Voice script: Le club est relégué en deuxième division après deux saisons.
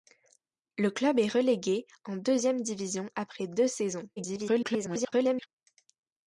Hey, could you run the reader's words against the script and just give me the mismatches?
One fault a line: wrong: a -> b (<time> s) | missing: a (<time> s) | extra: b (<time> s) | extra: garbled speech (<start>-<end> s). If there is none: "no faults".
extra: garbled speech (4.2-5.5 s)